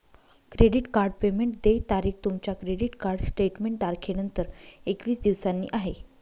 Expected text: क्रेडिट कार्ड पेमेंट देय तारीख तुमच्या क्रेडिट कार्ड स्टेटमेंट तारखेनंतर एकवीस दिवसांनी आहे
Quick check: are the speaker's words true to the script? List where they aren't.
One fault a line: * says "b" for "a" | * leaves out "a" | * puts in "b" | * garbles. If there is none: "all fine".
all fine